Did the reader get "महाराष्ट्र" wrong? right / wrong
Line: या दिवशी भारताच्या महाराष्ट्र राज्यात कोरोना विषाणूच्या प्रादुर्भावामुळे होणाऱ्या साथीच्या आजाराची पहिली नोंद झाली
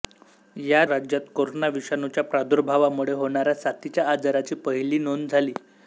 wrong